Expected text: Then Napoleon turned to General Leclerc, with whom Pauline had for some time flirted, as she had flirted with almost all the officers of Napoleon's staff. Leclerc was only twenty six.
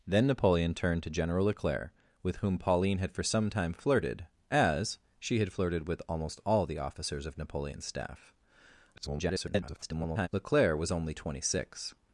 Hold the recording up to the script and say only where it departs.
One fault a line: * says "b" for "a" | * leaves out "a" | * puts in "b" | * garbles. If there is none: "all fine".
* garbles